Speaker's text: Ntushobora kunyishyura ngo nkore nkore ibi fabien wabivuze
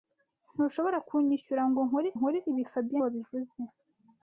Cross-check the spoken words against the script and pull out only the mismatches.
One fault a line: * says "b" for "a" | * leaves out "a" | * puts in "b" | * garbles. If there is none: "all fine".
all fine